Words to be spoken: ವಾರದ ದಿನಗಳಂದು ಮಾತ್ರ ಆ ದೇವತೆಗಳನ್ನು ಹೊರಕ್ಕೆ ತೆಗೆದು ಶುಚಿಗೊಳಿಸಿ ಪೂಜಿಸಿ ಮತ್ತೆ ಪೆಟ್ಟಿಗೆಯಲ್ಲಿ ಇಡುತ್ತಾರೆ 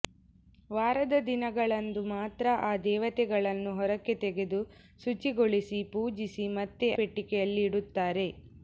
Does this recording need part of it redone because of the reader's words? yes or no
no